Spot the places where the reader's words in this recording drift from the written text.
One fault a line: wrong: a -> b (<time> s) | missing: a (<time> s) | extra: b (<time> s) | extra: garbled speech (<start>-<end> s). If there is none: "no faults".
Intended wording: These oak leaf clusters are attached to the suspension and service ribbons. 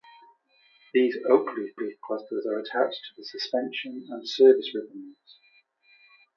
extra: leaf (1.8 s)